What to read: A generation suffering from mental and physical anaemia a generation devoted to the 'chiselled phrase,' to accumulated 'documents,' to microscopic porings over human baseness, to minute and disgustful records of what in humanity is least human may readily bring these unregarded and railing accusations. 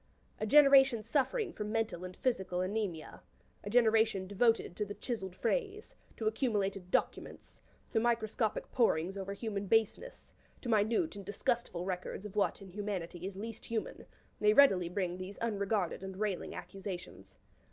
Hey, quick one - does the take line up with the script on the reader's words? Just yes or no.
yes